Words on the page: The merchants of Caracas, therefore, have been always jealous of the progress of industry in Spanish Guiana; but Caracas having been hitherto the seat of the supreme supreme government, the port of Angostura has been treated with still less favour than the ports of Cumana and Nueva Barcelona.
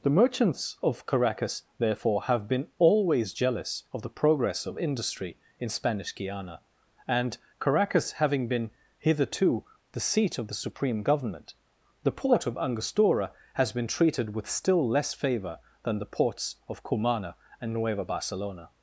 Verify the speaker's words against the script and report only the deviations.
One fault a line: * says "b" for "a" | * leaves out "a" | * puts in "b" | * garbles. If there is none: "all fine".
* says "and" for "but"
* leaves out "supreme"